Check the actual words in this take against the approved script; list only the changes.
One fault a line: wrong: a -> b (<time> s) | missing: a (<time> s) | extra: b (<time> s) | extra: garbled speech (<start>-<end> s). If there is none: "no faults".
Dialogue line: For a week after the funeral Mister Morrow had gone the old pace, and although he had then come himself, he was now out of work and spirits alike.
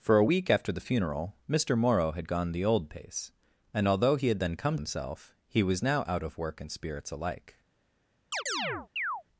no faults